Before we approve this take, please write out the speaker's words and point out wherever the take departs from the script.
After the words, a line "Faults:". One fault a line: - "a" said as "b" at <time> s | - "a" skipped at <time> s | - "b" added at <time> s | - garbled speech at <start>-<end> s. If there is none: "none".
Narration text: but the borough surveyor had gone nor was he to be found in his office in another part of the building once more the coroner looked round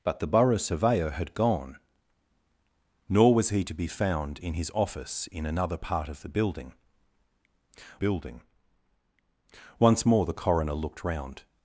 but the borough surveyor had gone nor was he to be found in his office in another part of the building building once more the coroner looked round
Faults:
- "building" added at 7.9 s